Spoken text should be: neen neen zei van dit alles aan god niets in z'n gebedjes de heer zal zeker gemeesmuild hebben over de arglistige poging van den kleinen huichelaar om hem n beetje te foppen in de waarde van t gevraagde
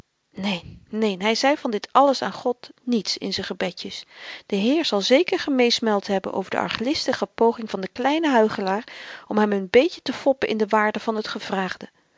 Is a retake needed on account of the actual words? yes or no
yes